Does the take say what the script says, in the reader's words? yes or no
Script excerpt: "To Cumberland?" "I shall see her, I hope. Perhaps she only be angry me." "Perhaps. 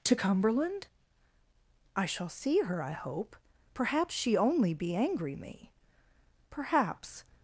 yes